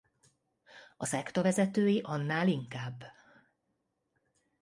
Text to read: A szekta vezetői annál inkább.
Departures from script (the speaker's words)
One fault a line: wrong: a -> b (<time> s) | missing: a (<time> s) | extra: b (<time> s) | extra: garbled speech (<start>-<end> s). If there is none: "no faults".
no faults